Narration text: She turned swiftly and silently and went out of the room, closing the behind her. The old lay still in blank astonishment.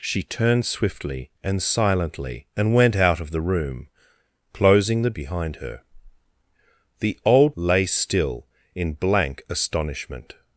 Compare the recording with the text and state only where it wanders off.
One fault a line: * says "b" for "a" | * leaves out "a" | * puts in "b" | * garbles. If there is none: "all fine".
all fine